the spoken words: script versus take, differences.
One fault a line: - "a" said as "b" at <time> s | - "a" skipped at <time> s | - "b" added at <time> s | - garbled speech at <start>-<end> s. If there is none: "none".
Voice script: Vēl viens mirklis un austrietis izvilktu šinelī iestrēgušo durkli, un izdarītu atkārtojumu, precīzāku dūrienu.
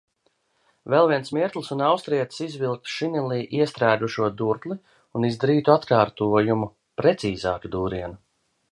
none